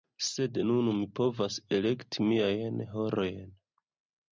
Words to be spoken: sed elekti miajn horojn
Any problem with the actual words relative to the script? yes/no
yes